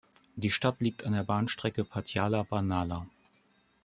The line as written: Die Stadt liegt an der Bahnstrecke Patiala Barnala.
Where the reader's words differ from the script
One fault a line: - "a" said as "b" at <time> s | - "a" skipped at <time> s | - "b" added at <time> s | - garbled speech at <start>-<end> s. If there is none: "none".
none